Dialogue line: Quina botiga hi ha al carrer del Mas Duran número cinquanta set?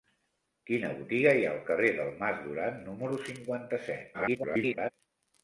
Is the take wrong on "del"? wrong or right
right